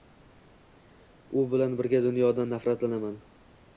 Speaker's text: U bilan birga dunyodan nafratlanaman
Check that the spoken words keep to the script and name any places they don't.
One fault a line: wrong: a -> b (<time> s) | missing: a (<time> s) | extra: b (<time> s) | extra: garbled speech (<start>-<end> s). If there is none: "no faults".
no faults